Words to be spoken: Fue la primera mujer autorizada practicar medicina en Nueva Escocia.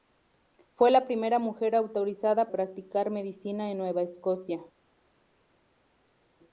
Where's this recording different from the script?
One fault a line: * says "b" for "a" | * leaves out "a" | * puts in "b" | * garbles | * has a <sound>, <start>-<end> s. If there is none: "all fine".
all fine